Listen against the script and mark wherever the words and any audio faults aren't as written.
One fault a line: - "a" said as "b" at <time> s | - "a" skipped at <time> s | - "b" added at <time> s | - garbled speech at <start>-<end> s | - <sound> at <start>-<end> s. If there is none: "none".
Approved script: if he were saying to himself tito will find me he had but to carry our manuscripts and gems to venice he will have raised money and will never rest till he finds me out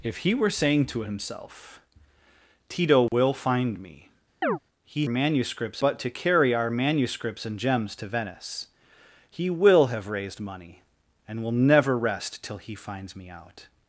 - dropout at 3.1-3.1 s
- chirp at 4.4-4.6 s
- "had" said as "manuscripts" at 5.1 s